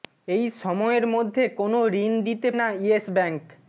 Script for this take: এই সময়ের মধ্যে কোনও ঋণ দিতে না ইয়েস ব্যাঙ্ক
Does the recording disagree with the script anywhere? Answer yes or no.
no